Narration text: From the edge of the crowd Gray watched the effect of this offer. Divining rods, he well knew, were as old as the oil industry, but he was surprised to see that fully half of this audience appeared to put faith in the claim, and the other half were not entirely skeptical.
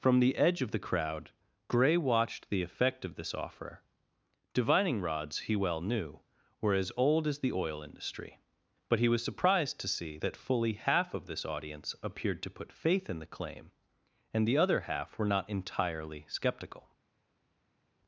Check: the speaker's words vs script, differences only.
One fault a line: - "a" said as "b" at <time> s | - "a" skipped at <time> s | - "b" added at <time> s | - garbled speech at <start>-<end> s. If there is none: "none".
none